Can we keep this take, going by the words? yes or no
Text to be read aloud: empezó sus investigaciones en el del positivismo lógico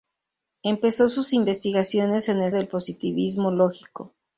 yes